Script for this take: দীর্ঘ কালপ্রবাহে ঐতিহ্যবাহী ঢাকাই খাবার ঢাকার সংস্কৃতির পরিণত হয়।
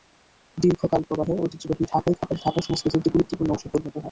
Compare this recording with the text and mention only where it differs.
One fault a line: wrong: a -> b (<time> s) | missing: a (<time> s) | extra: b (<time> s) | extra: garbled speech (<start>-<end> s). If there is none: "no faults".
extra: একটি গুরুত্বপূর্ণ অংশে (3.0 s)